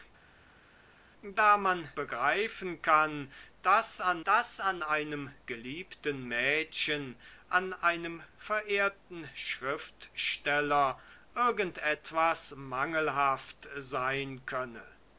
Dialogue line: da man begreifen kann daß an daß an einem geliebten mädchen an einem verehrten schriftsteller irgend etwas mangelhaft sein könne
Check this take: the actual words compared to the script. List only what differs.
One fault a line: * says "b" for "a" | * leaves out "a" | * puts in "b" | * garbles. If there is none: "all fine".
all fine